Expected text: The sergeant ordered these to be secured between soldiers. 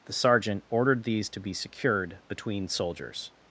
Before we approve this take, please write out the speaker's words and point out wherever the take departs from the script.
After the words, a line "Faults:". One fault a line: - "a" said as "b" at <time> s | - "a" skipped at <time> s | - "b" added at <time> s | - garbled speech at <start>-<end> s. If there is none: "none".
The sergeant ordered these to be secured between soldiers.
Faults:
none